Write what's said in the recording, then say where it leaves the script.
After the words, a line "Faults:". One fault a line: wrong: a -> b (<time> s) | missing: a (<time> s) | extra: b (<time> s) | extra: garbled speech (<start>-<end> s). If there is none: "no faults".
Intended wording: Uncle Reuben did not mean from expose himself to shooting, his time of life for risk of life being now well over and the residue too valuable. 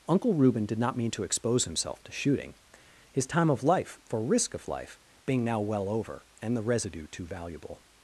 Uncle Reuben did not mean to expose himself to shooting, his time of life for risk of life being now well over and the residue too valuable.
Faults:
wrong: from -> to (1.1 s)